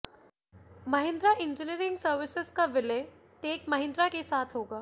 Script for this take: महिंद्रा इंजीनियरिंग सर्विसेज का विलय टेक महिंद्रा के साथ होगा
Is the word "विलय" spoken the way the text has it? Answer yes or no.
yes